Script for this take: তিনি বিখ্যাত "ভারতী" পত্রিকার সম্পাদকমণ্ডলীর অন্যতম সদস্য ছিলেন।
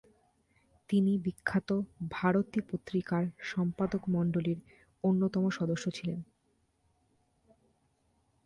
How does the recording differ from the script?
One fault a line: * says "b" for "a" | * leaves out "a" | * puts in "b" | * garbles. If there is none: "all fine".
all fine